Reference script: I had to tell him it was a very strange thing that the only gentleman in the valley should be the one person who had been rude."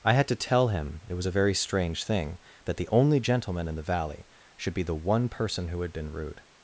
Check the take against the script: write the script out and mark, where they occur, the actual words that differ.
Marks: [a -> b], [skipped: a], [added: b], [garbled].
I had to tell him it was a very strange thing that the only gentleman in the valley should be the one person who had been rude."